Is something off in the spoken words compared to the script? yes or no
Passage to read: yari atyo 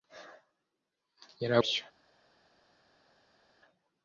no